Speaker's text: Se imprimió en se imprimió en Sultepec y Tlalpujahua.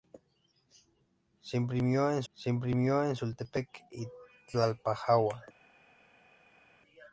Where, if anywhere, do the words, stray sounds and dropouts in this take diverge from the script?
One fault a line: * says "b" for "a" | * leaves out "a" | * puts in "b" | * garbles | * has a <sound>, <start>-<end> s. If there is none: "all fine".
all fine